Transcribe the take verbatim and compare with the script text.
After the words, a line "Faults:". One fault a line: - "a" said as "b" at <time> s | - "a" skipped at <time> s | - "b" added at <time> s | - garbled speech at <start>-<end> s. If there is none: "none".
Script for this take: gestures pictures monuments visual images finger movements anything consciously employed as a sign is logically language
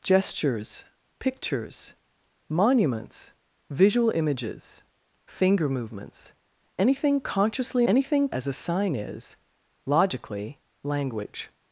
gestures pictures monuments visual images finger movements anything consciously anything as a sign is logically language
Faults:
- "employed" said as "anything" at 7.9 s